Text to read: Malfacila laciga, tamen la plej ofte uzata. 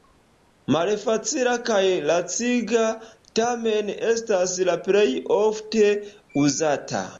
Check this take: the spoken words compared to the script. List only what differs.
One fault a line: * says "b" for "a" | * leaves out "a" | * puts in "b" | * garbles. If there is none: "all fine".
* puts in "kaj"
* puts in "estas"